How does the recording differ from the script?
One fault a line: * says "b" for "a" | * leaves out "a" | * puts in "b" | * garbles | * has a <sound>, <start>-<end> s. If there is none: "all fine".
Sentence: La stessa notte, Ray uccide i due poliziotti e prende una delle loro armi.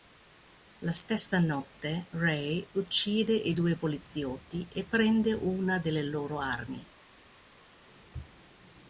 all fine